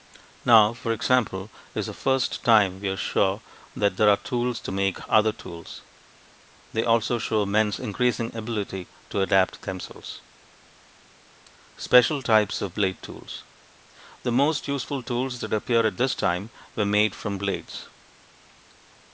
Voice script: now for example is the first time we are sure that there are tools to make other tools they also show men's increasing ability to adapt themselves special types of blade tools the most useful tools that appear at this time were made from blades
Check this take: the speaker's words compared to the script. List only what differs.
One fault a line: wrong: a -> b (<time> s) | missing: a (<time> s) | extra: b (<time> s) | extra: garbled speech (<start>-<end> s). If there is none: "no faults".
no faults